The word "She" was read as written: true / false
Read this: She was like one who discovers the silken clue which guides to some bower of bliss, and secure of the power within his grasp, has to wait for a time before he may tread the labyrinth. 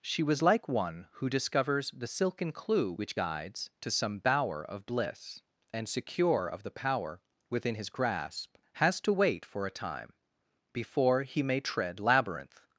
true